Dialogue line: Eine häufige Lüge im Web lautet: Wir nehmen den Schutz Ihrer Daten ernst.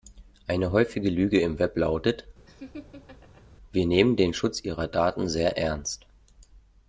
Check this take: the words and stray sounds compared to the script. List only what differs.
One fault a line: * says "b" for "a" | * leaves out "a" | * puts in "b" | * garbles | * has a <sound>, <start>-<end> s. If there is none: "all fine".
* has a laugh, 2.5-3.4 s
* puts in "sehr"